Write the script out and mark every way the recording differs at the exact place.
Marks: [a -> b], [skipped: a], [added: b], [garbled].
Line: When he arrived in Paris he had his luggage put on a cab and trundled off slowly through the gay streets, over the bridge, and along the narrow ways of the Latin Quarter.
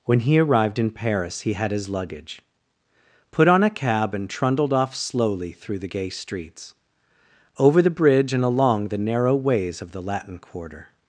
When he arrived in Paris he had his luggage put on a cab and trundled off slowly through the gay streets, over the bridge, and along the narrow ways of the Latin Quarter.